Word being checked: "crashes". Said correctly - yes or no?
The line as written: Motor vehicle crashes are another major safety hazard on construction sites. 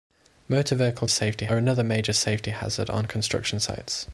no